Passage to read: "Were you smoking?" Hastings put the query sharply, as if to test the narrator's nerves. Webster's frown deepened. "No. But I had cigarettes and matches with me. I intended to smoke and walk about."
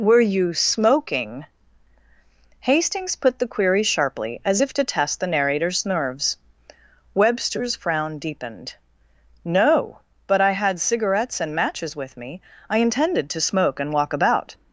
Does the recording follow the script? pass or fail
pass